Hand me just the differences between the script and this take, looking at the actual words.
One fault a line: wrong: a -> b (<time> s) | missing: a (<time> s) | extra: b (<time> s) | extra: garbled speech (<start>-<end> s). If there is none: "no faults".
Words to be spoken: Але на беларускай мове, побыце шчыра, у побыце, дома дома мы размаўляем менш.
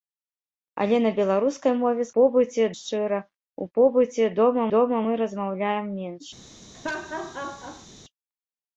no faults